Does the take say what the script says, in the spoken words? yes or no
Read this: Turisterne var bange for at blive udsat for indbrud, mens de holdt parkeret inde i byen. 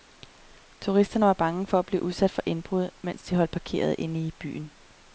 yes